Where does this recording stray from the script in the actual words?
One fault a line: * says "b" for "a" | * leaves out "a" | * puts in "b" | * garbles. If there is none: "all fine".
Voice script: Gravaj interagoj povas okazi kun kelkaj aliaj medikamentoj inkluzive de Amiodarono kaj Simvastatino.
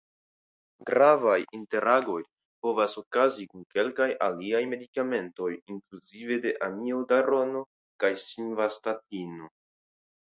all fine